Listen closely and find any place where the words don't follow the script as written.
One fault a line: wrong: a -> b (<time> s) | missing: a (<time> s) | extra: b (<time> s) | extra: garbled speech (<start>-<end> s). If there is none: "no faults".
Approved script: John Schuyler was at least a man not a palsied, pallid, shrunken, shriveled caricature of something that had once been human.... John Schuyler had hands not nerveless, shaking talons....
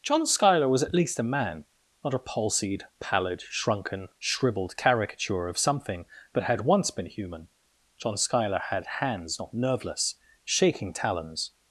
no faults